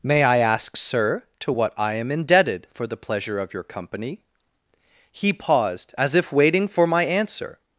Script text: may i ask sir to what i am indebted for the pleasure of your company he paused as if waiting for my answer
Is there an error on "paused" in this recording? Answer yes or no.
no